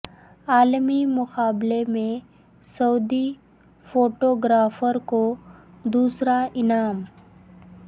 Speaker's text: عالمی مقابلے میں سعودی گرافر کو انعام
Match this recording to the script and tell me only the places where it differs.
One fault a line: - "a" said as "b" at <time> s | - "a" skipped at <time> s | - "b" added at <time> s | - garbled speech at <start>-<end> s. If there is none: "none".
- "فوٹو" added at 3.9 s
- "دوسرا" added at 5.8 s